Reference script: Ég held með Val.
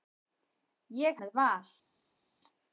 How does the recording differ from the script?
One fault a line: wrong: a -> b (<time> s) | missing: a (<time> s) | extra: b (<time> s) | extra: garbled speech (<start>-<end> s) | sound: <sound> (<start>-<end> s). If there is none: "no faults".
missing: held (1.2 s)